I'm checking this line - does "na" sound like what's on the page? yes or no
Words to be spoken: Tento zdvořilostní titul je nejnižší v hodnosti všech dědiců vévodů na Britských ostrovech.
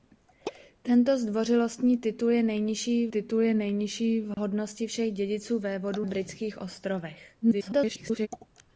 no